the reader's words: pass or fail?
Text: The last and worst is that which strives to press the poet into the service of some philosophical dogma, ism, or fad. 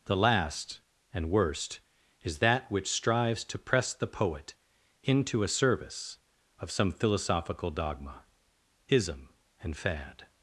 fail